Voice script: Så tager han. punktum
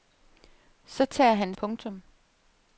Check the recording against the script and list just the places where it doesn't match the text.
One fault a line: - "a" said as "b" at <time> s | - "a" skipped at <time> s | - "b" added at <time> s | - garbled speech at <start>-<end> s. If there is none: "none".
none